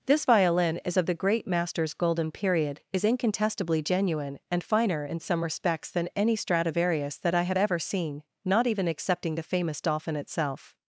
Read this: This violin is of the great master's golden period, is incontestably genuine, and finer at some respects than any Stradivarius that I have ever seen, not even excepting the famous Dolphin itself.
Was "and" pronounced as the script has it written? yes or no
yes